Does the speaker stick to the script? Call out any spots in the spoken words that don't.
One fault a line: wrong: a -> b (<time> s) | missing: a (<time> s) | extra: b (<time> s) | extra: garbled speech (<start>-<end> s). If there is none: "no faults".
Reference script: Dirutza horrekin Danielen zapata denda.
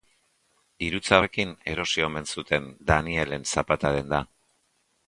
extra: erosi omen zuten (1.7 s)